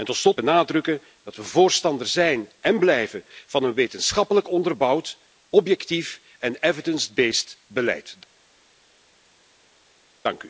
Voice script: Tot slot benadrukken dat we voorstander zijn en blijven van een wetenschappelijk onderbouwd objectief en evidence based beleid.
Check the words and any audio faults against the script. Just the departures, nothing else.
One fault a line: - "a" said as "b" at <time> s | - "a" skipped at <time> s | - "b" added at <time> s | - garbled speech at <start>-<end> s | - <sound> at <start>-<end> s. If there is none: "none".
none